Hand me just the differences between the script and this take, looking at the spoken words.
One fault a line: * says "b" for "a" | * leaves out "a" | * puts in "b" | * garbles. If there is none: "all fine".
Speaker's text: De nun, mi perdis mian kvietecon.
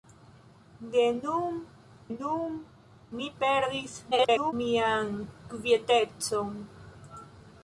* puts in "nun"
* garbles